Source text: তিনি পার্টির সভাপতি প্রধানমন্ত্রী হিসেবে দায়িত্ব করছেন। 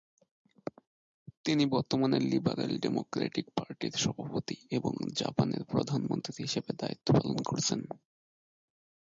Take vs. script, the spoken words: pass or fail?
fail